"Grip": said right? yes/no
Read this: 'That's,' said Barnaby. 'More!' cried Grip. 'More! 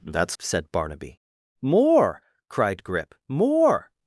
yes